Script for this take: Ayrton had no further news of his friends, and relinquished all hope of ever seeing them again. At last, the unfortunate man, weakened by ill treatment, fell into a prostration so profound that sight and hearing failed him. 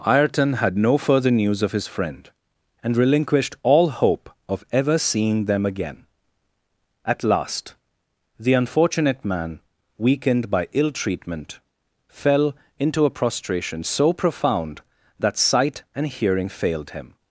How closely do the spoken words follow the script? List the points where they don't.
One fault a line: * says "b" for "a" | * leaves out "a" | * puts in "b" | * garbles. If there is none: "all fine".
* says "friend" for "friends"